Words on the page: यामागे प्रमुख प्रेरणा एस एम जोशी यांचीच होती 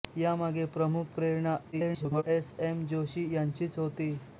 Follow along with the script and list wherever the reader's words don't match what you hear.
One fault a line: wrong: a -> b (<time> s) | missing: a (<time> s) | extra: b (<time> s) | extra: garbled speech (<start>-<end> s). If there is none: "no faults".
extra: garbled speech (1.7-2.2 s)